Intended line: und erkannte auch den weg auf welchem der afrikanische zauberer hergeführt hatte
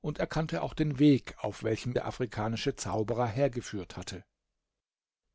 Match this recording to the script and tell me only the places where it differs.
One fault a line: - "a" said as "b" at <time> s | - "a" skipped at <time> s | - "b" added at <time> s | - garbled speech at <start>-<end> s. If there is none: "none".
none